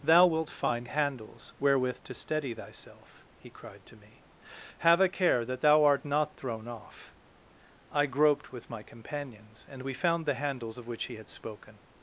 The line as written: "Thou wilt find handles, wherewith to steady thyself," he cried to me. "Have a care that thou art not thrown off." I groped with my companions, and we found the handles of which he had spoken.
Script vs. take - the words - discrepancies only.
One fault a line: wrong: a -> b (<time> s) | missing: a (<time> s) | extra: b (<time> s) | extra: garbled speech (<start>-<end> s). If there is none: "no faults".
no faults